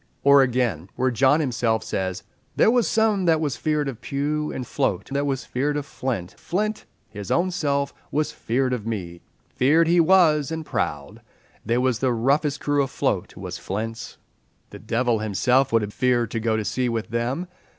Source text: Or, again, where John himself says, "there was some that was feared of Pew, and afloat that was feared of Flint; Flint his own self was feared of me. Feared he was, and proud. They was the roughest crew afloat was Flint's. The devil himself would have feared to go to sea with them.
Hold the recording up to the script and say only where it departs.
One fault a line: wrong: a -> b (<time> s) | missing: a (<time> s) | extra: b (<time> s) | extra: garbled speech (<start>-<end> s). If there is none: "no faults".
no faults